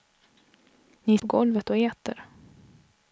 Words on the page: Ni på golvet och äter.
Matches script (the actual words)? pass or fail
pass